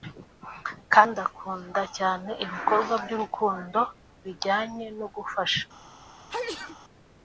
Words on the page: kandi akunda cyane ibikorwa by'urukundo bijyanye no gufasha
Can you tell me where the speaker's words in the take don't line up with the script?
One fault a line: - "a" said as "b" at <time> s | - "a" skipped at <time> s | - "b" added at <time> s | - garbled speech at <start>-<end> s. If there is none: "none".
none